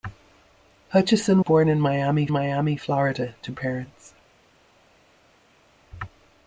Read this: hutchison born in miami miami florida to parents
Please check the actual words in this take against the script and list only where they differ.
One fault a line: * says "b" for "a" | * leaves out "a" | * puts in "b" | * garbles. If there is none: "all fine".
all fine